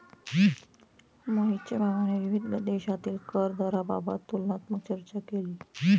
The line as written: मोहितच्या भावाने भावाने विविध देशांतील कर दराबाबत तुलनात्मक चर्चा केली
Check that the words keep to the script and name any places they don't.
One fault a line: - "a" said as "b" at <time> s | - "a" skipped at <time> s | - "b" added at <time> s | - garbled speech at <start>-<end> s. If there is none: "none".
- "भावाने" skipped at 2.2 s